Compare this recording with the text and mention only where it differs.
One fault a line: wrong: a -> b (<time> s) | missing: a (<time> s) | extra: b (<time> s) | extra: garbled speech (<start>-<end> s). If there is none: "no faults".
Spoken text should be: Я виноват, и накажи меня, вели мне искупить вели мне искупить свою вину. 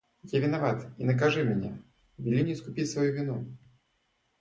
missing: вели мне искупить (2.9 s)